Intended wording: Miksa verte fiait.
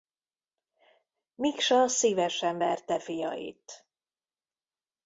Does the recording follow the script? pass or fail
fail